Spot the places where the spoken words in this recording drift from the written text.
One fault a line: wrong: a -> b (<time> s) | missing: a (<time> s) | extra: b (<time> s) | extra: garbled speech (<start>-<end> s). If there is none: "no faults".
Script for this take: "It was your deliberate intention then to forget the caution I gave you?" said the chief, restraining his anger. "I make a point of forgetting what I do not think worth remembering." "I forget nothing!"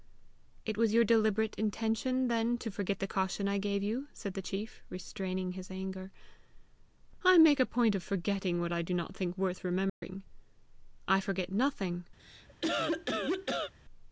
no faults